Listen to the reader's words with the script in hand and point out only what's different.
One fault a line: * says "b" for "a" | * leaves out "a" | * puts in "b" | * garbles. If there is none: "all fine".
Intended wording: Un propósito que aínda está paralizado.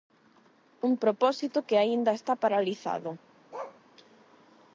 all fine